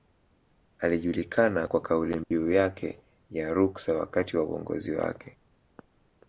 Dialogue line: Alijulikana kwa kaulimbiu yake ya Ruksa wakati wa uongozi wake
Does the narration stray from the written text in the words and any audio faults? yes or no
yes